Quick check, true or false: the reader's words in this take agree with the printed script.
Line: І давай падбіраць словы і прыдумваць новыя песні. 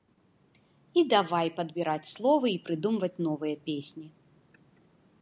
true